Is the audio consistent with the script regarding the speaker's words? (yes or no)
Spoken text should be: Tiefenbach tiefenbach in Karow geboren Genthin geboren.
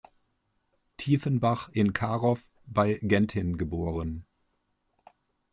no